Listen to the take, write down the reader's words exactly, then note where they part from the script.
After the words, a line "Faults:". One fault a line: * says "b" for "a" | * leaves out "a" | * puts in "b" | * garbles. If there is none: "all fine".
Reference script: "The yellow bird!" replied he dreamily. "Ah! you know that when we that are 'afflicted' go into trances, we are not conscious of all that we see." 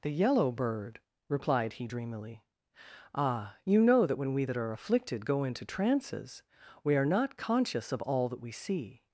"The yellow bird!" replied he dreamily. "Ah! you know that when we that are 'afflicted' go into trances, we are not conscious of all that we see."
Faults:
all fine